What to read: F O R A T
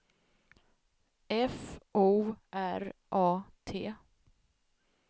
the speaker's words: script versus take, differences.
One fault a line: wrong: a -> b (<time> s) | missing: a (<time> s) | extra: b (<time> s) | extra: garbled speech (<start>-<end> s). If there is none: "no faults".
no faults